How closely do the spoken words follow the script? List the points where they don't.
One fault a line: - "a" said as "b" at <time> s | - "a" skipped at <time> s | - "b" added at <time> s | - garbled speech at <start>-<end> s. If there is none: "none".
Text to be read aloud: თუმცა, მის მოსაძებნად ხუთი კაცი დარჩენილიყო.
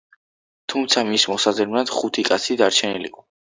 none